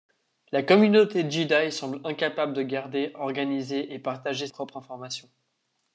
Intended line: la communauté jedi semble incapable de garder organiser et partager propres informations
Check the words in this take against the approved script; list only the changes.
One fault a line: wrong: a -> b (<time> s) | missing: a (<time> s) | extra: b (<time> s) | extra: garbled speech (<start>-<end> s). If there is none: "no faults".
no faults